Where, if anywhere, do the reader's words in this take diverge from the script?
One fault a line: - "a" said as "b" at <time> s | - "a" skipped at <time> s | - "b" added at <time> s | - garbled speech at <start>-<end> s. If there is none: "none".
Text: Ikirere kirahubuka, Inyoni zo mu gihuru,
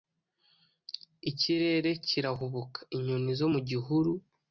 none